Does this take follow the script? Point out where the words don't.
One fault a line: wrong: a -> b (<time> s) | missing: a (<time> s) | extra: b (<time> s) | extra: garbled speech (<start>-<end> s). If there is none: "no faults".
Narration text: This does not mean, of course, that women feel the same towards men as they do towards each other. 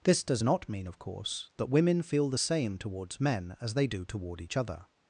wrong: towards -> toward (4.0 s)